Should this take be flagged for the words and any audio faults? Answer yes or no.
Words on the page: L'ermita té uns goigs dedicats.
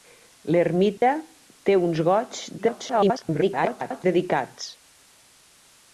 yes